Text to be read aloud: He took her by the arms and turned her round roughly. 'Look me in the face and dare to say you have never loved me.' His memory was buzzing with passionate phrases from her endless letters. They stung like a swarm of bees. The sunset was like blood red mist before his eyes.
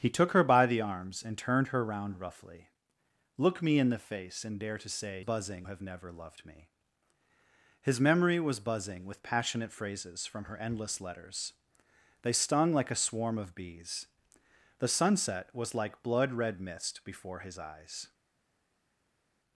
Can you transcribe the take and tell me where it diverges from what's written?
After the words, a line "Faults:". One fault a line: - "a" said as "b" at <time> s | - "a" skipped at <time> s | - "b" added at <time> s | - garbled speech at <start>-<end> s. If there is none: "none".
He took her by the arms and turned her round roughly. 'Look me in the face and dare to say buzzing have never loved me.' His memory was buzzing with passionate phrases from her endless letters. They stung like a swarm of bees. The sunset was like blood red mist before his eyes.
Faults:
- "you" said as "buzzing" at 5.2 s